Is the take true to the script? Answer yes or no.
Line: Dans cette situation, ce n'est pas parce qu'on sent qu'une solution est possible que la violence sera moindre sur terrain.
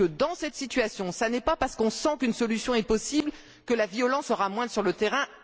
no